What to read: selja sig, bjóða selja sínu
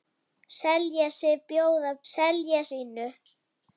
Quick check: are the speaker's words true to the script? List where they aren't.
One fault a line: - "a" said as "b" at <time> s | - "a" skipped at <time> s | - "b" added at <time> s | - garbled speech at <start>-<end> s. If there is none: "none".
none